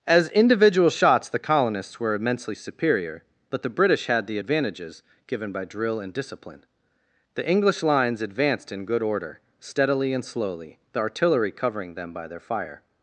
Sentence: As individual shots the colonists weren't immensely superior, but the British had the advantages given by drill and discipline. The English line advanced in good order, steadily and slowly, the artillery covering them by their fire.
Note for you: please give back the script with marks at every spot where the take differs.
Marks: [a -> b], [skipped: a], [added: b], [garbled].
As individual shots the colonists [weren't -> were] immensely superior, but the British had the advantages given by drill and discipline. The English [line -> lines] advanced in good order, steadily and slowly, the artillery covering them by their fire.